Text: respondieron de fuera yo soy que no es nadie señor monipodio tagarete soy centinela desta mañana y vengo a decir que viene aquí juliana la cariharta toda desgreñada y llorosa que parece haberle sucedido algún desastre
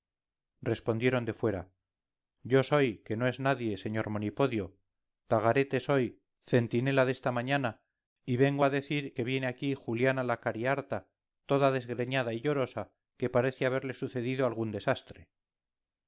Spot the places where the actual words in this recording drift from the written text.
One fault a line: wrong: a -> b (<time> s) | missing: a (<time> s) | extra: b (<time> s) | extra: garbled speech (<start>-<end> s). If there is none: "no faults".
no faults